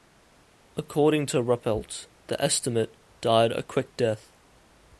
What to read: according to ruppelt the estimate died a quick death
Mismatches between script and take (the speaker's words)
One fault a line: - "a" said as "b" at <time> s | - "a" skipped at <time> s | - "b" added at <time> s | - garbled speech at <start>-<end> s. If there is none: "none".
none